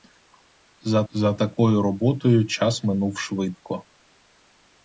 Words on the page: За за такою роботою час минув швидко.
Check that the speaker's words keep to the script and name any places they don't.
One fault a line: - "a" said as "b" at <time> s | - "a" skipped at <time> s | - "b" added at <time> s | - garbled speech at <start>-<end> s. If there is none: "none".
none